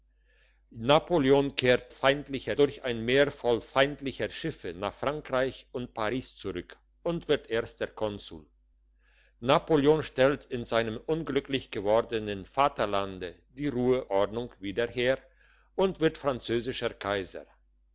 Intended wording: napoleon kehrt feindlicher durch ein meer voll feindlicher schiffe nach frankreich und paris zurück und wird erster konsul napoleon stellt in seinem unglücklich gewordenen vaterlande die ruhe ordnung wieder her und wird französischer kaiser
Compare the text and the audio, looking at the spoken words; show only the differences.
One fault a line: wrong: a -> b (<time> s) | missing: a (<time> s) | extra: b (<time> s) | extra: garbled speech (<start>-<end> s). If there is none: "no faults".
no faults